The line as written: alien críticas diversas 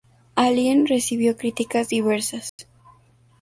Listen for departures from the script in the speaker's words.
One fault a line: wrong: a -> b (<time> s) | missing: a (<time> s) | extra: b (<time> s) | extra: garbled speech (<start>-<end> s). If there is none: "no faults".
extra: recibió (0.9 s)